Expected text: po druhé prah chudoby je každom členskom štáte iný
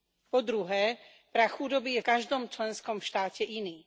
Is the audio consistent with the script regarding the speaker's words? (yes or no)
yes